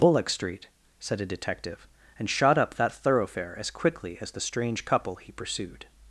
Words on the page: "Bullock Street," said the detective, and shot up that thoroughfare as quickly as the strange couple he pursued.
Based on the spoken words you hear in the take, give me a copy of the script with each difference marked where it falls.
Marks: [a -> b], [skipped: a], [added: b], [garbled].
"Bullock Street," said [the -> a] detective, and shot up that thoroughfare as quickly as the strange couple he pursued.